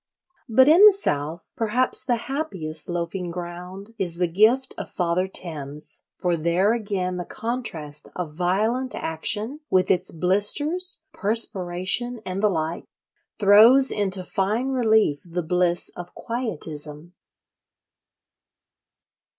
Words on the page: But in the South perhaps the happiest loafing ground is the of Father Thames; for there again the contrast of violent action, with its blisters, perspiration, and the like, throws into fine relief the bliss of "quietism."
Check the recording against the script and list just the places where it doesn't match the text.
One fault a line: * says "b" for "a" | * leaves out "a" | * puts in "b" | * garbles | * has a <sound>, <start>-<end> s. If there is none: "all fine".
* puts in "gift"